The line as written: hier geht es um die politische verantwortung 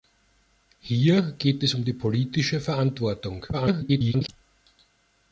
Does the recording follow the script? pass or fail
fail